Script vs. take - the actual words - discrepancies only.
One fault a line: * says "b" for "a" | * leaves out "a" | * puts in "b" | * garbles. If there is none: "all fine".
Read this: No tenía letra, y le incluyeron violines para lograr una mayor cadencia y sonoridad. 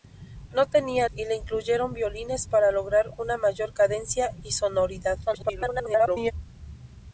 * leaves out "letra"
* garbles